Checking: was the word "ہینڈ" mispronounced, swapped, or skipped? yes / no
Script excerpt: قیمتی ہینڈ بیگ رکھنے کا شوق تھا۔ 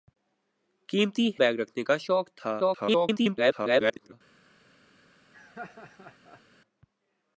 yes